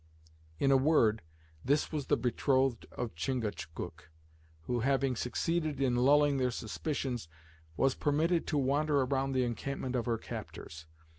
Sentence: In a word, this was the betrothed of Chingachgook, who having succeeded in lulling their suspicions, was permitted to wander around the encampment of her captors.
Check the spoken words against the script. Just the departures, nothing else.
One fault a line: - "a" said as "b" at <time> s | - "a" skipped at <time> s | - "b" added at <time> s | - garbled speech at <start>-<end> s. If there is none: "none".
none